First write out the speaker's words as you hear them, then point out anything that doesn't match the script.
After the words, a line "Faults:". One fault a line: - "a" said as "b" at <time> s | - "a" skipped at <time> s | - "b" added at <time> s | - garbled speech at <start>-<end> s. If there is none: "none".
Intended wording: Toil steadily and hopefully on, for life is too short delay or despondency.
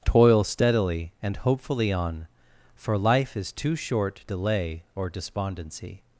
Toil steadily and hopefully on, for life is too short delay or despondency.
Faults:
none